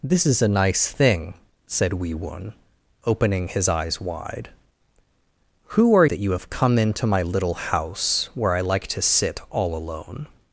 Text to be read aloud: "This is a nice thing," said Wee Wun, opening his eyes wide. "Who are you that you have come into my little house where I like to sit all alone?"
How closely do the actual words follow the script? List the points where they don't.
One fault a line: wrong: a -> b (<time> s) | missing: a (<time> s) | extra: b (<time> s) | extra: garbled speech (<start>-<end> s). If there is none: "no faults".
missing: you (6.0 s)